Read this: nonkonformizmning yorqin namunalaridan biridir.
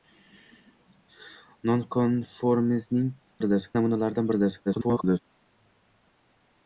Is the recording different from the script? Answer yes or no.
yes